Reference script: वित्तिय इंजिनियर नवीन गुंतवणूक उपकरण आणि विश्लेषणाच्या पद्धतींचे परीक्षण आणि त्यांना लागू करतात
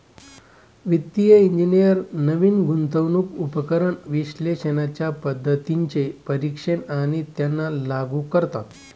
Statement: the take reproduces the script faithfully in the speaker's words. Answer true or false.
false